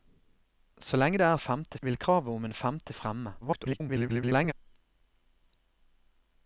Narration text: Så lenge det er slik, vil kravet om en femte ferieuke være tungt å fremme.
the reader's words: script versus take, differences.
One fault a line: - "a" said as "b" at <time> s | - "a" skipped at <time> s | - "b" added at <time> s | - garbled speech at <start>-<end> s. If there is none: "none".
- "slik" said as "femte" at 1.4 s
- "ferieuke være tungt" skipped at 2.9 s
- garbled speech at 3.4-4.5 s